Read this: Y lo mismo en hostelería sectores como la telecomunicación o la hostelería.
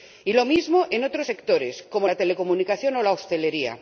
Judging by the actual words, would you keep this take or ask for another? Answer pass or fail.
fail